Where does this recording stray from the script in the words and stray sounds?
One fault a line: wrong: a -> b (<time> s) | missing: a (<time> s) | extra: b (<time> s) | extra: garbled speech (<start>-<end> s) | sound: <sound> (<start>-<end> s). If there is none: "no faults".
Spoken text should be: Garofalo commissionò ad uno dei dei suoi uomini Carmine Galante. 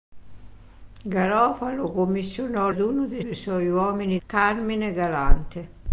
no faults